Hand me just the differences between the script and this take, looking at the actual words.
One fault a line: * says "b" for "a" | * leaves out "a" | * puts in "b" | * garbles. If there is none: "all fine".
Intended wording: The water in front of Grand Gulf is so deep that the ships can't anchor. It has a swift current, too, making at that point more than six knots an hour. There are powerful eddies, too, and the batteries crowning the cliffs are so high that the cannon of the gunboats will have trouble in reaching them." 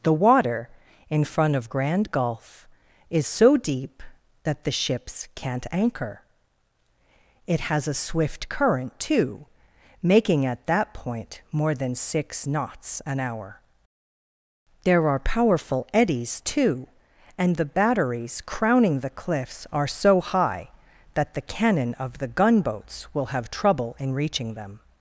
all fine